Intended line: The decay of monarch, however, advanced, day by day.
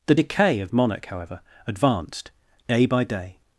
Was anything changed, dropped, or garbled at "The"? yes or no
no